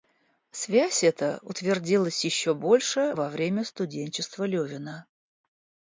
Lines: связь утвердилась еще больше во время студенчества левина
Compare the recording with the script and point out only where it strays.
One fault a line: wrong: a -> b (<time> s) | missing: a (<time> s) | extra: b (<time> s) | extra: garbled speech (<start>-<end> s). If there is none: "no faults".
extra: эта (1.0 s)